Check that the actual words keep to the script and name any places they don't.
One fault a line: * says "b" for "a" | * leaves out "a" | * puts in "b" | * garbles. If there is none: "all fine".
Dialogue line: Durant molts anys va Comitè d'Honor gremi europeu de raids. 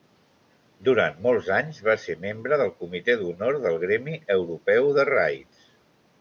* puts in "ser membre del"
* puts in "del"